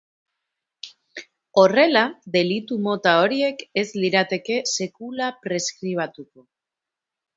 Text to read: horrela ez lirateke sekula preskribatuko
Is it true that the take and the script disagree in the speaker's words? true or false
true